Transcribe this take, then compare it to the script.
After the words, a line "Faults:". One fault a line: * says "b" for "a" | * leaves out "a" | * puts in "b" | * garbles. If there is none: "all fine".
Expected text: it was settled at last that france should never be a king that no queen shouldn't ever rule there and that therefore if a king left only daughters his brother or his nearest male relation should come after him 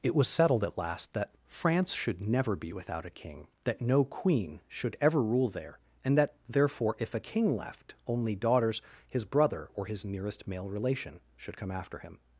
it was settled at last that france should never be without a king that no queen should ever rule there and that therefore if a king left only daughters his brother or his nearest male relation should come after him
Faults:
* puts in "without"
* says "should" for "shouldn't"